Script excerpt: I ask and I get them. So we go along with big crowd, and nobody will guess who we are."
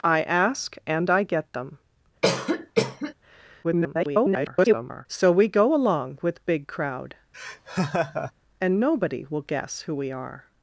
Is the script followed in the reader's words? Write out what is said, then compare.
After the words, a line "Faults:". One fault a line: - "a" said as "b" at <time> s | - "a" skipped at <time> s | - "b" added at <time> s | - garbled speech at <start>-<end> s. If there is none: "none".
I ask and I get them. [garbled] So we go along with big crowd, and nobody will guess who we are."
Faults:
- garbled speech at 3.6-5.1 s